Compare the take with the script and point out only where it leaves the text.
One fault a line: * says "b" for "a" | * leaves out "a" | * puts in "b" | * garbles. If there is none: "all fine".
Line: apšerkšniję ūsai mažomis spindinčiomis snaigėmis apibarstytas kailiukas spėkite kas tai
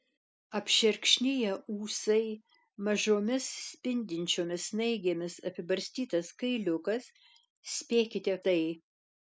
* leaves out "kas"